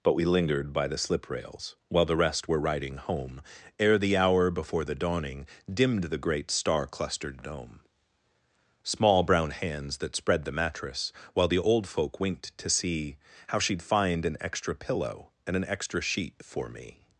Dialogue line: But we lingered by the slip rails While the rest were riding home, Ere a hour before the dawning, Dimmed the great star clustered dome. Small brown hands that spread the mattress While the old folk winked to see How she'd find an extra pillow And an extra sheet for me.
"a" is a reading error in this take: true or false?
true